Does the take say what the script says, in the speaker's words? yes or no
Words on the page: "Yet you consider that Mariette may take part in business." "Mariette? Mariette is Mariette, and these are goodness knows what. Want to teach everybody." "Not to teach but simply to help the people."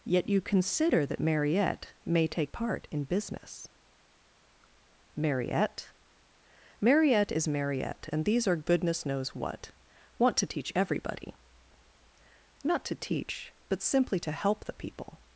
yes